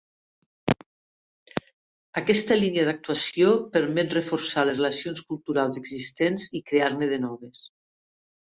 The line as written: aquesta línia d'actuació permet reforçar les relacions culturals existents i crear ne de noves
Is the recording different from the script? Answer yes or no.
no